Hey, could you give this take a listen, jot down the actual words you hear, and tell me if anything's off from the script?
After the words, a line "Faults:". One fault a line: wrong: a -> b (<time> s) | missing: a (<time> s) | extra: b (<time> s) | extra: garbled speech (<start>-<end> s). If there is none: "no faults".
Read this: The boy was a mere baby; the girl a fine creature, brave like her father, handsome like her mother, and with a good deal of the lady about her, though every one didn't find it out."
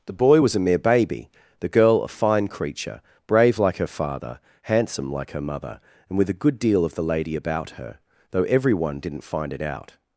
The boy was a mere baby; the girl a fine creature, brave like her father, handsome like her mother, and with a good deal of the lady about her, though every one didn't find it out."
Faults:
no faults